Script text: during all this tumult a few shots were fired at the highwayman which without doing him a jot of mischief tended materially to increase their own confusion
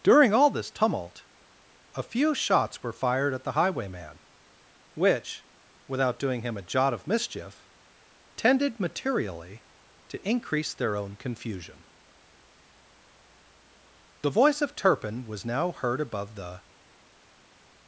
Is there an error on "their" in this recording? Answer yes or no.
no